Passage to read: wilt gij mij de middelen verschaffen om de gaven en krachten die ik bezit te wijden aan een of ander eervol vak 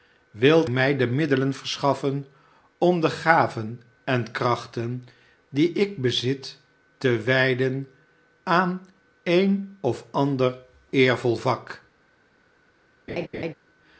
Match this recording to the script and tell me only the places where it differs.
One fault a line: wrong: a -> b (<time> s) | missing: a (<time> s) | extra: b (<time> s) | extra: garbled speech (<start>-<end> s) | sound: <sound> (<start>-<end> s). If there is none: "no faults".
missing: gij (0.7 s)
sound: laugh (13.1-13.5 s)